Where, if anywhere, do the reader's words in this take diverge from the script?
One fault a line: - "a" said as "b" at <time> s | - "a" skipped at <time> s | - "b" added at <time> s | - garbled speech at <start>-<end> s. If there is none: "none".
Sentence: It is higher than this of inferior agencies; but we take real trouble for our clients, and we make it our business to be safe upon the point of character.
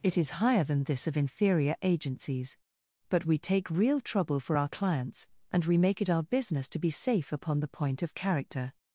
none